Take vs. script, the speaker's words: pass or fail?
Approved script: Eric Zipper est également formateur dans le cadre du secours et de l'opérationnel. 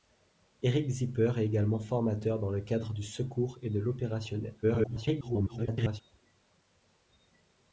fail